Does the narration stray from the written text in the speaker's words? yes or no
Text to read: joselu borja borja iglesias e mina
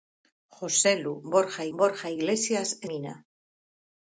no